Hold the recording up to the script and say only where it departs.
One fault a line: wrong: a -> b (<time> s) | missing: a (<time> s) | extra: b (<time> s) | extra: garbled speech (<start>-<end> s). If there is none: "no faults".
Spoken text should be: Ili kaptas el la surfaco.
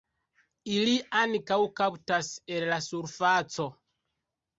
extra: ankaŭ (1.2 s)